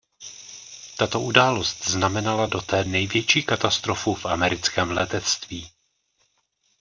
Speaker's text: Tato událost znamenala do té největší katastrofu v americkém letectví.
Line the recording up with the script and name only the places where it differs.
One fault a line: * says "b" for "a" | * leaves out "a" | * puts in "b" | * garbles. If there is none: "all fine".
all fine